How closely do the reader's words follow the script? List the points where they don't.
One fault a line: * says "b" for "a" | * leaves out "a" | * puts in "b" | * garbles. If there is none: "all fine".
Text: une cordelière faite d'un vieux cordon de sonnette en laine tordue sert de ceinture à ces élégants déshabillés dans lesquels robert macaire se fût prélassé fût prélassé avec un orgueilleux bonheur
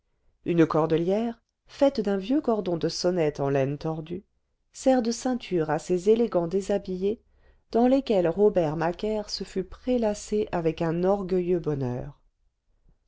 * leaves out "fût prélassé"